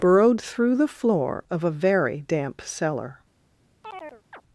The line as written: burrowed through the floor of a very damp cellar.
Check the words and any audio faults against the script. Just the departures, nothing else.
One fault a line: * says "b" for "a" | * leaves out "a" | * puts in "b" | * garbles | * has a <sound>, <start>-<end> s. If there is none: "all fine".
* has a chirp, 3.8-4.4 s